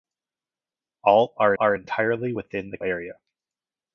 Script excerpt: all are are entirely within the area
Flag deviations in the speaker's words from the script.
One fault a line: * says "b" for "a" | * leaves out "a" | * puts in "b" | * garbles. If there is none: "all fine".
all fine